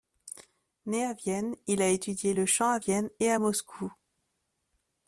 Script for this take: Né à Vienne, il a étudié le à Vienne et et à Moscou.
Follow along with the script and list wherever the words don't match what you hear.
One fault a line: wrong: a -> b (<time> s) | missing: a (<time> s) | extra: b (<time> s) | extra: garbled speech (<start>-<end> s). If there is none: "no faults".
extra: chant (2.5 s)
missing: et (3.3 s)